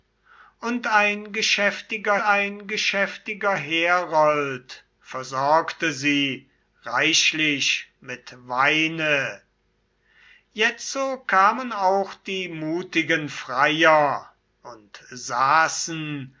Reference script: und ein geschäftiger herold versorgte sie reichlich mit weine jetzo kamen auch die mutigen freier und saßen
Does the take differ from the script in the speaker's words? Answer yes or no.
yes